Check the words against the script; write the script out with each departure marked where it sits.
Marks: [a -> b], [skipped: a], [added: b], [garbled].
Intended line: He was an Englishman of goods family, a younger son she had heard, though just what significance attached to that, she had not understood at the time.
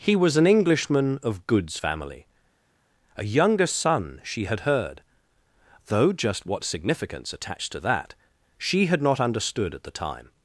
He was an Englishman of goods family, a younger son she had heard, though just what significance attached to that, she had not understood at the time.